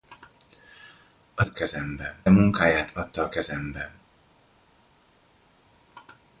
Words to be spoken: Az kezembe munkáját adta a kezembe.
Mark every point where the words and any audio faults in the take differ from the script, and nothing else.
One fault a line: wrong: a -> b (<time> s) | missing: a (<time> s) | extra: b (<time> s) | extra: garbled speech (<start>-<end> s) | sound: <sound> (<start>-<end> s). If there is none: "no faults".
no faults